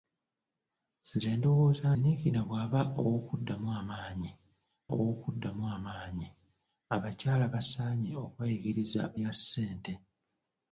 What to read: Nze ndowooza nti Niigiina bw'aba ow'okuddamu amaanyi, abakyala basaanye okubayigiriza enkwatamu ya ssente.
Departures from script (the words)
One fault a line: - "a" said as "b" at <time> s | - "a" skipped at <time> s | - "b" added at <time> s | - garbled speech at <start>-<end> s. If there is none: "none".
- "nti" skipped at 1.9 s
- "ow'okuddamu amaanyi" added at 4.9 s
- "enkwatamu" skipped at 9.0 s